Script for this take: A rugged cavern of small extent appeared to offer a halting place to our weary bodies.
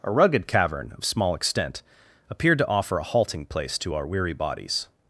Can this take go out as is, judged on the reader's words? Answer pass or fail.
pass